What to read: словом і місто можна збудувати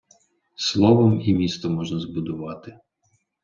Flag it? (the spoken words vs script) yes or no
no